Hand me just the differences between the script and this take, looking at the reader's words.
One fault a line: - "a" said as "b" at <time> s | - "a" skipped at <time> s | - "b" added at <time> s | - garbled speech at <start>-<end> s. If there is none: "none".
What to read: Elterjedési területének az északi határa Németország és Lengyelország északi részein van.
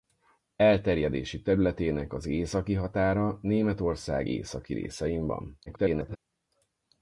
- "és Lengyelország" skipped at 4.3 s
- garbled speech at 5.7-6.2 s